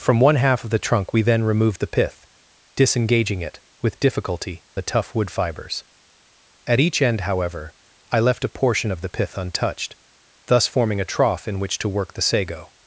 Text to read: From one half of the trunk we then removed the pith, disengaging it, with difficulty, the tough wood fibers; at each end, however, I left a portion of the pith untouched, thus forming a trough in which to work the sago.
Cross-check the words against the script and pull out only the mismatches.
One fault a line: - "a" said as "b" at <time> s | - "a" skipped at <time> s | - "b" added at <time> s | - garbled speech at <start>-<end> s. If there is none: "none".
none